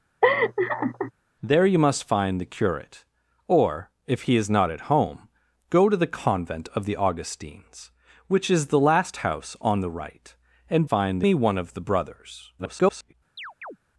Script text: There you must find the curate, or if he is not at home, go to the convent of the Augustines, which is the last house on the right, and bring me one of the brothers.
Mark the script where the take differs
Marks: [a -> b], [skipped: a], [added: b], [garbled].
There you must find the curate, or if he is not at home, go to the convent of the Augustines, which is the last house on the right, and [bring -> find] me one of the brothers. [garbled]